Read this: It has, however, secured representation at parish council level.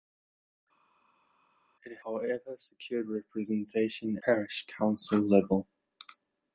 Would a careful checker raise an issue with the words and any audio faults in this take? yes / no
yes